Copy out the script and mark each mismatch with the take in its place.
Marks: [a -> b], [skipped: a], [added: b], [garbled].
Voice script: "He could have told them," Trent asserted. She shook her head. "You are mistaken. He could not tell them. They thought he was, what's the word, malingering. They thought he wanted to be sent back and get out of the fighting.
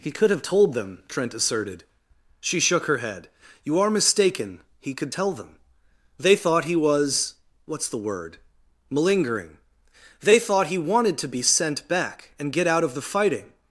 "He could have told them," Trent asserted. She shook her head. "You are mistaken. He could [skipped: not] tell them. They thought he was, what's the word, malingering. They thought he wanted to be sent back and get out of the fighting.